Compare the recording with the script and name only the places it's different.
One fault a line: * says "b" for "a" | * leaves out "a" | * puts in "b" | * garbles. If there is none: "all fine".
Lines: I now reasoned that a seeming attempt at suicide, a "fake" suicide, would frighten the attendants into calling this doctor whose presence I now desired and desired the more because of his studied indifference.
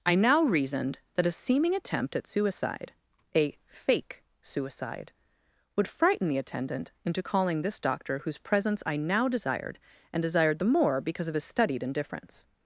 * says "attendant" for "attendants"